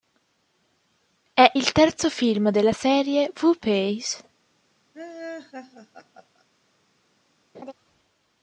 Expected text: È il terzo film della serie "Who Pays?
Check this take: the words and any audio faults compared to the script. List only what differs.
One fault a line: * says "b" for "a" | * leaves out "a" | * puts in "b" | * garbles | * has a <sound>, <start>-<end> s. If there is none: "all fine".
* has a laugh, 4.9-6.4 s
* has a laugh, 7.5-7.7 s